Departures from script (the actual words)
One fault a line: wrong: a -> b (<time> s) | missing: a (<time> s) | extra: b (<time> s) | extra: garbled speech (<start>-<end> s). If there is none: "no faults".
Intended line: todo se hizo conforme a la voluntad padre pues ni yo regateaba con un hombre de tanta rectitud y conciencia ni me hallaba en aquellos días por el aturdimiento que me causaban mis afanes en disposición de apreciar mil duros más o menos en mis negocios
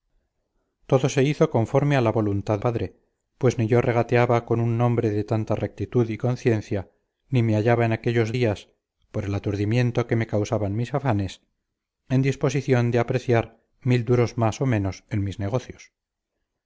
no faults